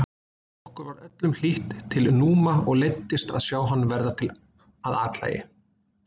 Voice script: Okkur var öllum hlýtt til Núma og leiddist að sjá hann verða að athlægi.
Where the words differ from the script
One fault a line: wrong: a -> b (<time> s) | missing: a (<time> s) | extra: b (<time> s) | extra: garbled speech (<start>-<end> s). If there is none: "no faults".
no faults